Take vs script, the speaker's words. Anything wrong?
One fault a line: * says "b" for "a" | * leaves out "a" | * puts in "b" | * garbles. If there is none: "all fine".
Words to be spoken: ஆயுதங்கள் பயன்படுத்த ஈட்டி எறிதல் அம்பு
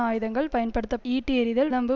all fine